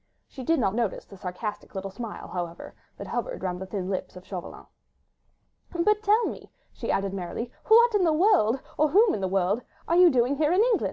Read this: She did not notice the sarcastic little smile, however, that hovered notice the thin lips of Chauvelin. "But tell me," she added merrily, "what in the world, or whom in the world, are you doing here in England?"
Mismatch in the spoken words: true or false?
true